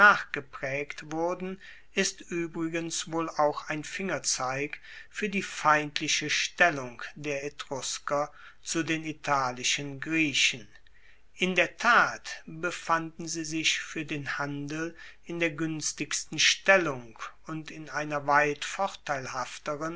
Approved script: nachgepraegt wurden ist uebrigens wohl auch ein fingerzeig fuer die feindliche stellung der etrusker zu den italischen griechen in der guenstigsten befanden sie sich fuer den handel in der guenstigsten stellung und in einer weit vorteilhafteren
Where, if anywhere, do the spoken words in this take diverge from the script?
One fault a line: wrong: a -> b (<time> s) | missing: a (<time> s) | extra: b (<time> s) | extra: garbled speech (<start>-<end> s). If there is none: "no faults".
wrong: guenstigsten -> tat (11.8 s)